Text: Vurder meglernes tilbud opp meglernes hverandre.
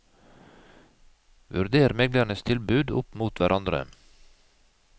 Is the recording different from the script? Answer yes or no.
yes